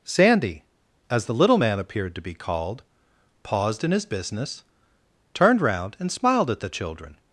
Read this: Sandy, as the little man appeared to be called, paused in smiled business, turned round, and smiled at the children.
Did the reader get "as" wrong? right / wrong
right